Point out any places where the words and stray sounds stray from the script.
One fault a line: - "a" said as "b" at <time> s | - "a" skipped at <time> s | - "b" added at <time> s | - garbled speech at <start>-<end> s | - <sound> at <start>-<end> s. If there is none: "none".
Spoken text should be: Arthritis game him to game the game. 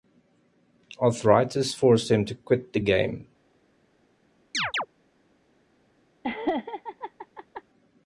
- "game" said as "forced" at 1.7 s
- "game" said as "quit" at 2.3 s
- chirp at 4.5-4.9 s
- laugh at 6.2-7.6 s